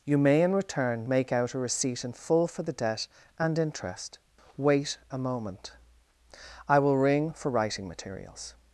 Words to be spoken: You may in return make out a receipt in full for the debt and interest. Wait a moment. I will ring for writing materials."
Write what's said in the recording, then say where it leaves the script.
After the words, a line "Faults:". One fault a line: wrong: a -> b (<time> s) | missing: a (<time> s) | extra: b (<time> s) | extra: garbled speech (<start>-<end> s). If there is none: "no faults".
You may in return make out a receipt in full for the debt and interest. Wait a moment. I will ring for writing materials."
Faults:
no faults